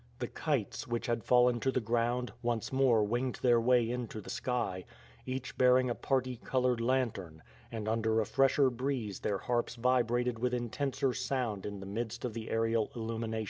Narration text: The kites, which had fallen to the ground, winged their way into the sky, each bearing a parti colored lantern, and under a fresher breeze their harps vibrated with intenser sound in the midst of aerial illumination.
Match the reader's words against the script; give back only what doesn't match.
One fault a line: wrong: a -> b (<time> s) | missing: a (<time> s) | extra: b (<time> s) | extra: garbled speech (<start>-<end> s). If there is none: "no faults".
extra: once more (2.4 s)
extra: the (12.3 s)